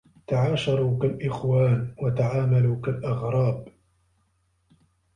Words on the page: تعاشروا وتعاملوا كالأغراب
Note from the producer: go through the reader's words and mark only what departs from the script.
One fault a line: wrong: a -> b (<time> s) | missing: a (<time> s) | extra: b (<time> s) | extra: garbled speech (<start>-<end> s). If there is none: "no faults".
extra: كالإخوان (1.0 s)